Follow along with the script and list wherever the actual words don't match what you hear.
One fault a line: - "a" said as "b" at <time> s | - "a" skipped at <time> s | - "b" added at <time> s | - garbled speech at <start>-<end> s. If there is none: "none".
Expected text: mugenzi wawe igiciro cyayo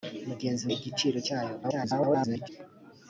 - "wawe" skipped at 0.7 s
- garbled speech at 1.6-2.5 s